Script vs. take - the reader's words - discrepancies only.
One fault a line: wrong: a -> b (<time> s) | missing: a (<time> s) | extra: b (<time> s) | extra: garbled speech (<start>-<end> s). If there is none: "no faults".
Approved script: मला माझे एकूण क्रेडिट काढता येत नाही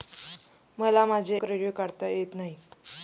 missing: एकूण (1.4 s)